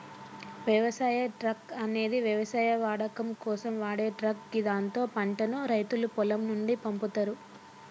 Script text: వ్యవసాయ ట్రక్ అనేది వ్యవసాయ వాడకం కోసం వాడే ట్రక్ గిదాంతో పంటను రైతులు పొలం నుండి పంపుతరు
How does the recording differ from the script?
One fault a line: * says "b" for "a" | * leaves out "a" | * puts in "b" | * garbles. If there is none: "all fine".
all fine